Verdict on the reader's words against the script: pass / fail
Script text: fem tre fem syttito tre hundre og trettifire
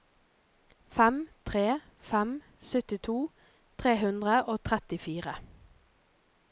pass